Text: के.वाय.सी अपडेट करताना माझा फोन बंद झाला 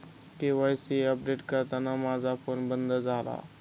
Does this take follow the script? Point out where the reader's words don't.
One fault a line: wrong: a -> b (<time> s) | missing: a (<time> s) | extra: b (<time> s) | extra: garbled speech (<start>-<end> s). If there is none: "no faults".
no faults